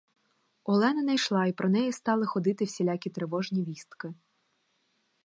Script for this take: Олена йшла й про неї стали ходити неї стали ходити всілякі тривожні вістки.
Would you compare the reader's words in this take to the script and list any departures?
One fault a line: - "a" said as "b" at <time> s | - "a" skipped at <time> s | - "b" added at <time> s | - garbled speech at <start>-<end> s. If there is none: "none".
- "не" added at 1.0 s
- "неї стали ходити" skipped at 2.6 s